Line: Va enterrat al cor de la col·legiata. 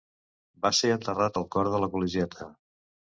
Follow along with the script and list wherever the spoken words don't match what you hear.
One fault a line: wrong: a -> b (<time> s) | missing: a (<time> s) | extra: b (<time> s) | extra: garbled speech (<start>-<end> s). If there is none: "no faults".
extra: ser (0.8 s)